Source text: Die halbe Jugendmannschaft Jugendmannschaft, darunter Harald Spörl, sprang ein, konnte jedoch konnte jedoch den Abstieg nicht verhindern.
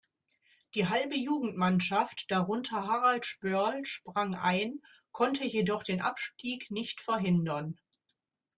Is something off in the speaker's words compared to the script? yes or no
yes